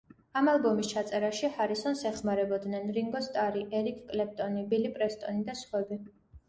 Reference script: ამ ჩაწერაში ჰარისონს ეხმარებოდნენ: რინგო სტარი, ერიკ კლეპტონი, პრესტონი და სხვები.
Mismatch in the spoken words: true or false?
true